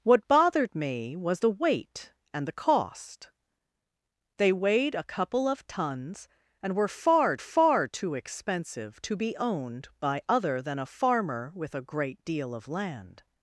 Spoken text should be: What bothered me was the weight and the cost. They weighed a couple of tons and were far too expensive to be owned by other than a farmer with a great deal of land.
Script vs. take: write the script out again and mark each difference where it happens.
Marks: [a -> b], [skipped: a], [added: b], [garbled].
What bothered me was the weight and the cost. They weighed a couple of tons and were far [added: far] too expensive to be owned by other than a farmer with a great deal of land.